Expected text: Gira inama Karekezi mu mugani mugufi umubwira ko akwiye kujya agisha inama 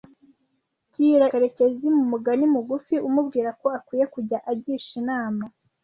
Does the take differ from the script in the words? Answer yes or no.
yes